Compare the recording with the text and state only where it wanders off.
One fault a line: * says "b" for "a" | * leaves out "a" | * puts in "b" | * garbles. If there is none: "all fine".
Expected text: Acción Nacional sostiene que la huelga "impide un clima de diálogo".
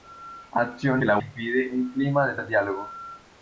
* leaves out "Nacional sostiene"
* leaves out "huelga"
* puts in "de"